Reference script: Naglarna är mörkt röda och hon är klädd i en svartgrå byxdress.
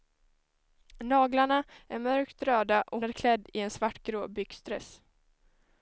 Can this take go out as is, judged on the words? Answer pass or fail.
fail